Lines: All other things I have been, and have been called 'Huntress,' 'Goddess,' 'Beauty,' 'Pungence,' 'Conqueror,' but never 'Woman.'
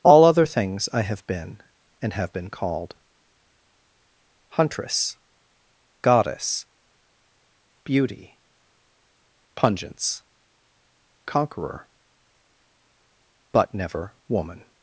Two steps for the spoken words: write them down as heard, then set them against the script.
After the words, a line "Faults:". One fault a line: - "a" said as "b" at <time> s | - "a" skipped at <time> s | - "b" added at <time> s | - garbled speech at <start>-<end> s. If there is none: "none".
All other things I have been, and have been called 'Huntress,' 'Goddess,' 'Beauty,' 'Pungence,' 'Conqueror,' but never 'Woman.'
Faults:
none